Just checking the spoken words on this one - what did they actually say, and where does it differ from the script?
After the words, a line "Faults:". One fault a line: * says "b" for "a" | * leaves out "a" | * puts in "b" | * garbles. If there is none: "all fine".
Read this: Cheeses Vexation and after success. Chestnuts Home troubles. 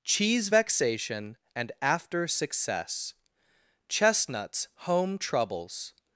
Cheese Vexation and after success. Chestnuts Home troubles.
Faults:
* says "Cheese" for "Cheeses"